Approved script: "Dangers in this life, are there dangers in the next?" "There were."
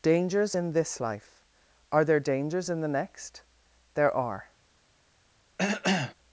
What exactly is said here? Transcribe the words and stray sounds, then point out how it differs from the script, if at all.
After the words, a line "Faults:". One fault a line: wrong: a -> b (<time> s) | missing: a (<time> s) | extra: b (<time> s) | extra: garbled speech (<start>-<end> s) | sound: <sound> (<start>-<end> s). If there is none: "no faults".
"Dangers in this life, are there dangers in the next?" "There are."
Faults:
wrong: were -> are (4.2 s)
sound: cough (5.6-6.1 s)